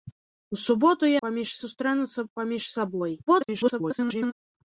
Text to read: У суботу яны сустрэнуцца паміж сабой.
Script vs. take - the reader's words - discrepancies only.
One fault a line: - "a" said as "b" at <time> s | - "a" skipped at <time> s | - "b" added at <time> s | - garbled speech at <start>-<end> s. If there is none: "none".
- "яны" said as "паміж" at 1.3 s
- garbled speech at 3.3-4.3 s